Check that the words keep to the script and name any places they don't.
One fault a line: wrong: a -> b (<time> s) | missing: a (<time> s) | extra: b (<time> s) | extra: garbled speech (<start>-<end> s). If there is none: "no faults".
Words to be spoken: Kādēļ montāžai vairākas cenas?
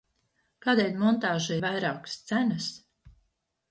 no faults